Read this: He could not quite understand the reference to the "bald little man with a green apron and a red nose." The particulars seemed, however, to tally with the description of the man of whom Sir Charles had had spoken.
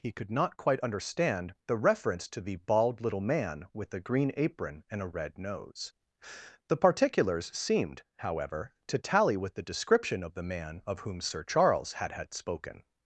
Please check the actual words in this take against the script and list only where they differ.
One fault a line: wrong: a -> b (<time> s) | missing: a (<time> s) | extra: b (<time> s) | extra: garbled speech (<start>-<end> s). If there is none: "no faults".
no faults